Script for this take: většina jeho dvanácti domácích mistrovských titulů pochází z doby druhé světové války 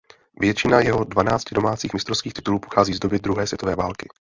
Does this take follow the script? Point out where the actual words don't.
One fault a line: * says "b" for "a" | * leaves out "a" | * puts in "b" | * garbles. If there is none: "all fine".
all fine